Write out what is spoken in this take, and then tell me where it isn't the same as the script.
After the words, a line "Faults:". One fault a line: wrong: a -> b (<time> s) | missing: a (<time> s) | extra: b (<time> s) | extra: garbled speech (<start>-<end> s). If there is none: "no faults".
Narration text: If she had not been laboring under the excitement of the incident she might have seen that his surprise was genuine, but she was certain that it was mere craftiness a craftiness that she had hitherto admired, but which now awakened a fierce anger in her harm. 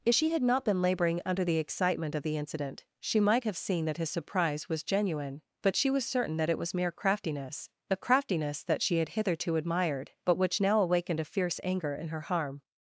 If she had not been laboring under the excitement of the incident she might have seen that his surprise was genuine, but she was certain that it was mere craftiness a craftiness that she had hitherto admired, but which now awakened a fierce anger in her harm.
Faults:
no faults